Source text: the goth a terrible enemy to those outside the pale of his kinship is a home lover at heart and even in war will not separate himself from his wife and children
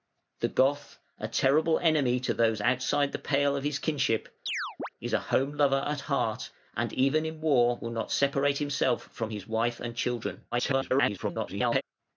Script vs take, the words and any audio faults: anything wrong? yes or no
yes